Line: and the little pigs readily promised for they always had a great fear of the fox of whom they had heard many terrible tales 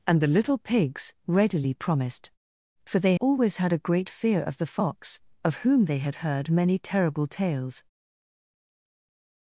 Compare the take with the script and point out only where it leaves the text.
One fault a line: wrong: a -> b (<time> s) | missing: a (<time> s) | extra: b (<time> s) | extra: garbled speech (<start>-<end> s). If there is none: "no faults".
no faults